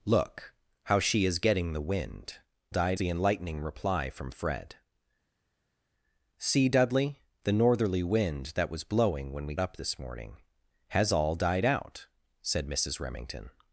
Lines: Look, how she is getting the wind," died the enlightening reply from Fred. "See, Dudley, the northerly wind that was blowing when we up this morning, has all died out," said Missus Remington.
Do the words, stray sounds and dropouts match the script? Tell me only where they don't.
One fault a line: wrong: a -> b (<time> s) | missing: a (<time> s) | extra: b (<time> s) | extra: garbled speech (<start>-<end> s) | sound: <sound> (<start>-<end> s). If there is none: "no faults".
no faults